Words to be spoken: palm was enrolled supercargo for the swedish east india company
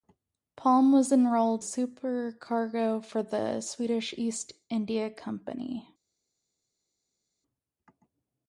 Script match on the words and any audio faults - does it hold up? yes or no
yes